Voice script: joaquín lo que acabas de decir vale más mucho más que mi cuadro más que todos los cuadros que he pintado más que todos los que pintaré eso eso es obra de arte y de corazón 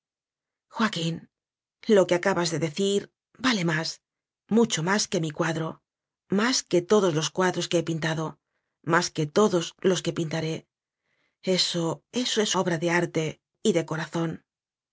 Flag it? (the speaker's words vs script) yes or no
no